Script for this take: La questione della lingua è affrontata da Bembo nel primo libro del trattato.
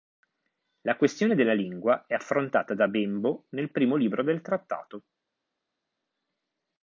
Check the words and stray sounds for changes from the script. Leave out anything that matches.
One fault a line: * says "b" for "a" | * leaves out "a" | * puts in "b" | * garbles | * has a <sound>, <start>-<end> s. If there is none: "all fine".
all fine